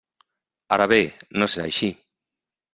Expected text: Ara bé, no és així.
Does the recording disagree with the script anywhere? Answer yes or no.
no